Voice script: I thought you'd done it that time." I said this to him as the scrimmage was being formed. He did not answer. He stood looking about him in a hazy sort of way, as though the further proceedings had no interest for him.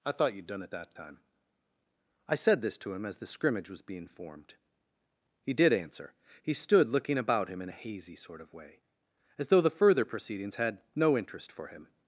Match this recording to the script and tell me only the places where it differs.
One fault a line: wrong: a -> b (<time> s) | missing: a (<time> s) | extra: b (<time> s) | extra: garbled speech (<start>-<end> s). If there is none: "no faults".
missing: not (5.7 s)